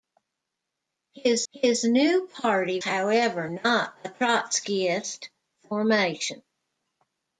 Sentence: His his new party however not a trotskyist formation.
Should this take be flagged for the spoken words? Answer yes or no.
no